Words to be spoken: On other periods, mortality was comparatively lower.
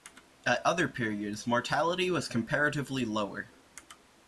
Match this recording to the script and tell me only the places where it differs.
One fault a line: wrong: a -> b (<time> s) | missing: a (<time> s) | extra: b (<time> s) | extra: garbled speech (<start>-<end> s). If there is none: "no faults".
wrong: On -> At (0.5 s)